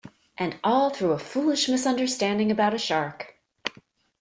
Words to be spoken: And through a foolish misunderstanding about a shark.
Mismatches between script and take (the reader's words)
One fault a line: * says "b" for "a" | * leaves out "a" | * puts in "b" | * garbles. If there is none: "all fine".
* puts in "all"